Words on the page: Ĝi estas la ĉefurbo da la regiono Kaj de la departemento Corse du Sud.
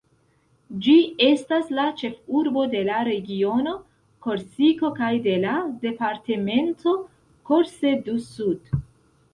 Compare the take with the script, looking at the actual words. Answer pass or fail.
fail